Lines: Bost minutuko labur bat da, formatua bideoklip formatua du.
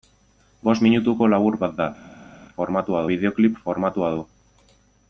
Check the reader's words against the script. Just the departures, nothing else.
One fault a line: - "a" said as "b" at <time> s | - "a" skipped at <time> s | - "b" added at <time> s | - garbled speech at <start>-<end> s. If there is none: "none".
none